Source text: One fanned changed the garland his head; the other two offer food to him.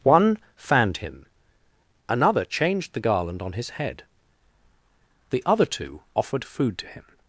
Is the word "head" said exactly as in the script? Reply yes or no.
yes